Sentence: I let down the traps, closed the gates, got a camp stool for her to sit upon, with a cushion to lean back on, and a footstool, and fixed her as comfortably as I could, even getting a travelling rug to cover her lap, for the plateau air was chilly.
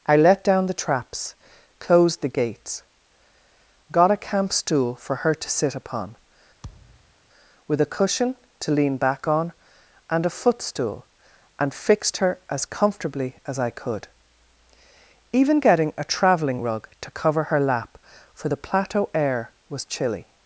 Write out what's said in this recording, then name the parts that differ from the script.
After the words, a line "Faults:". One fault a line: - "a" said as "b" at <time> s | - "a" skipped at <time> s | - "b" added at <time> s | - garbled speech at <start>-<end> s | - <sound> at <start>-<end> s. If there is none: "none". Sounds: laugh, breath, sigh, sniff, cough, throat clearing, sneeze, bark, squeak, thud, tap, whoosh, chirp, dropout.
I let down the traps, closed the gates, got a camp stool for her to sit upon, with a cushion to lean back on, and a footstool, and fixed her as comfortably as I could, even getting a travelling rug to cover her lap, for the plateau air was chilly.
Faults:
- thud at 6.6-7.1 s